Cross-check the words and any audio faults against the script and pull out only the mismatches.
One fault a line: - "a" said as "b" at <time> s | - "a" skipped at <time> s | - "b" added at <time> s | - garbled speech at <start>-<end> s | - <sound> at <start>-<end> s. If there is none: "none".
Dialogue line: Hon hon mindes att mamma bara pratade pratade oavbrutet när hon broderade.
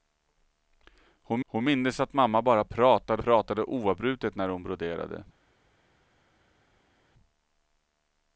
none